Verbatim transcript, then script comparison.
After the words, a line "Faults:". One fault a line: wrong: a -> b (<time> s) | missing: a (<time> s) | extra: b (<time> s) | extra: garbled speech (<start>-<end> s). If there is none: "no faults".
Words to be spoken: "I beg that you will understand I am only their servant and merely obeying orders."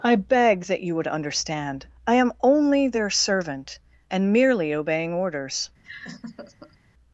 "I beg that you would understand I am only their servant and merely obeying orders."
Faults:
wrong: will -> would (0.9 s)